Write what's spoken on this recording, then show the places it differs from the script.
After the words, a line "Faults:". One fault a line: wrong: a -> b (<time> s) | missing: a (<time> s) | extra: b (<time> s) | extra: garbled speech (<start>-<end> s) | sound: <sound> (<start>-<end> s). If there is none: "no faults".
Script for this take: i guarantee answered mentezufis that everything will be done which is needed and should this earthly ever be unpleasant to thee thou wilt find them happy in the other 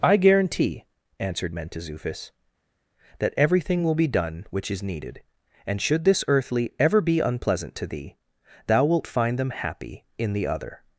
i guarantee answered mentezufis that everything will be done which is needed and should this earthly ever be unpleasant to thee thou wilt find them happy in the other
Faults:
no faults